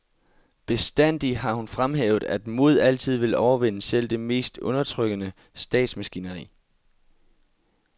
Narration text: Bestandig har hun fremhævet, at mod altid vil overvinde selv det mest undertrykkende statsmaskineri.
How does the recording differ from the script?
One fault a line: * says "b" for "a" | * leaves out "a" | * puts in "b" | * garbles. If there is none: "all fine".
all fine